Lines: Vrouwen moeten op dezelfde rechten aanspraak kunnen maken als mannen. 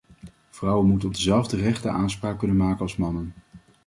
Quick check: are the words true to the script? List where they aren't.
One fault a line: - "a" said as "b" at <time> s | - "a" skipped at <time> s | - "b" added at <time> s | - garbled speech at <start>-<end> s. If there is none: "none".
none